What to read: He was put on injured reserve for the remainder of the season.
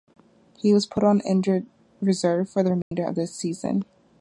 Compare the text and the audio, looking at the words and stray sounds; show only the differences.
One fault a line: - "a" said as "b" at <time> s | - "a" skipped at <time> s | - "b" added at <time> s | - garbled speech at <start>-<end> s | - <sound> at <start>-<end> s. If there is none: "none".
- dropout at 2.8-2.9 s